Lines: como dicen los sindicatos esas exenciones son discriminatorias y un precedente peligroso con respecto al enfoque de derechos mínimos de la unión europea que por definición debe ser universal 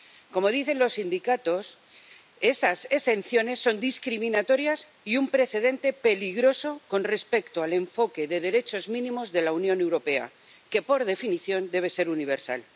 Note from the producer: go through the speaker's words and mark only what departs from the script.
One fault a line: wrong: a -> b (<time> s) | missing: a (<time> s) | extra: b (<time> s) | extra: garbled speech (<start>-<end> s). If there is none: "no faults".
no faults